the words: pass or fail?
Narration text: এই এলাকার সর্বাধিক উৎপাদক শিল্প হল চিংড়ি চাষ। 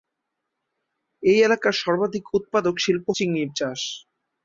fail